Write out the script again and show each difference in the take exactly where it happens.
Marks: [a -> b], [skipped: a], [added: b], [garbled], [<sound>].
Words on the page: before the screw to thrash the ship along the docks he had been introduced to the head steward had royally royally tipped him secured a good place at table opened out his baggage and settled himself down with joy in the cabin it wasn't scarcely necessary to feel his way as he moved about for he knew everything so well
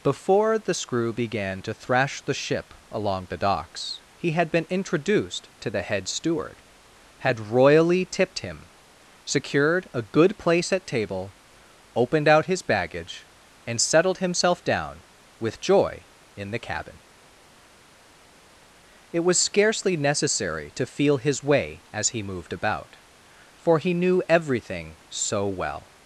before the screw [added: began] to thrash the ship along the docks he had been introduced to the head steward had royally [skipped: royally] tipped him secured a good place at table opened out his baggage and settled himself down with joy in the cabin it [wasn't -> was] scarcely necessary to feel his way as he moved about for he knew everything so well